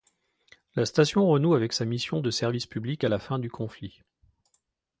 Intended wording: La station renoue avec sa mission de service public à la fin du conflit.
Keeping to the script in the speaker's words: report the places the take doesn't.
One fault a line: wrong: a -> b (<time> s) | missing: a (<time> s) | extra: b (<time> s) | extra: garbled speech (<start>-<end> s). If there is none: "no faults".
no faults